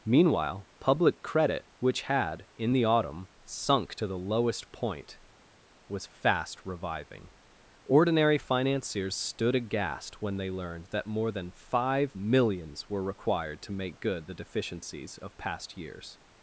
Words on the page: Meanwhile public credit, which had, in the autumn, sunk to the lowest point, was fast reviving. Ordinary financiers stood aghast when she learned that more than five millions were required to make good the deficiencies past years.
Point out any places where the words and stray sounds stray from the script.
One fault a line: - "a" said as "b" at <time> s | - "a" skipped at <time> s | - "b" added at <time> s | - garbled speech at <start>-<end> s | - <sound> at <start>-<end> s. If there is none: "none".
- "she" said as "they" at 10.4 s
- "of" added at 15.2 s